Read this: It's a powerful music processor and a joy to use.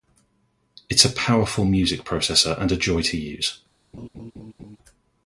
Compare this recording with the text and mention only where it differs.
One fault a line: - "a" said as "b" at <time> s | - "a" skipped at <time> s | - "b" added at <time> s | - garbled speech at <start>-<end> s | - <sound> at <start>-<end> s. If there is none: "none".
- laugh at 3.9-4.8 s